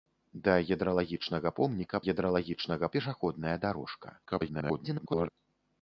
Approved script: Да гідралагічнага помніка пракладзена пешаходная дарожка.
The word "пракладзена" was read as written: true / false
false